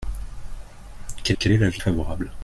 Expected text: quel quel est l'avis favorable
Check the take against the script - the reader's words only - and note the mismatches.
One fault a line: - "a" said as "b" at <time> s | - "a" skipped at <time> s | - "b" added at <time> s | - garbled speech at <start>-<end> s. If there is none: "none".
none